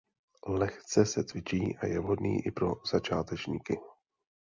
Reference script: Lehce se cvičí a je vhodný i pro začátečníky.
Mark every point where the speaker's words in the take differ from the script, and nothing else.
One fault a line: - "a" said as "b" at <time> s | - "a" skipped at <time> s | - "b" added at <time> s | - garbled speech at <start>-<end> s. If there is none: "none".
none